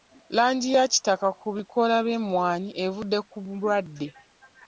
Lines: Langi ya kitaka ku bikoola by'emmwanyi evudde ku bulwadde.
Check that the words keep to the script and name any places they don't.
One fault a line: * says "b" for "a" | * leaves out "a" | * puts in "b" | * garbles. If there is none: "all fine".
all fine